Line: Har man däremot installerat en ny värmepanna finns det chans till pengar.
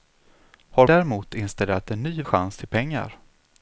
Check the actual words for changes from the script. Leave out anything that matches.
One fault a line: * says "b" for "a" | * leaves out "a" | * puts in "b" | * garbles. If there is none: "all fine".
* leaves out "man"
* leaves out "värmepanna finns det"